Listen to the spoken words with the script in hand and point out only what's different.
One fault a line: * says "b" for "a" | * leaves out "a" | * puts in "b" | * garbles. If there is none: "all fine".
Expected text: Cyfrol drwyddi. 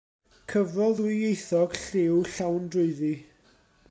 * puts in "ddwyieithog lliw llawn"